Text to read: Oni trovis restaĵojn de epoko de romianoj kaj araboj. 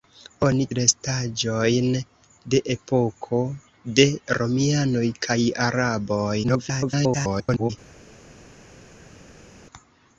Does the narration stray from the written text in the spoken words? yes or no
yes